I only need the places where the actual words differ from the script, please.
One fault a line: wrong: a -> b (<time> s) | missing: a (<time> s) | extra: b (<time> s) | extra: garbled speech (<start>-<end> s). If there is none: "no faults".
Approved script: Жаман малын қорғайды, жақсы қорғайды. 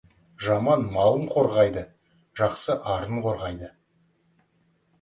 extra: арын (3.0 s)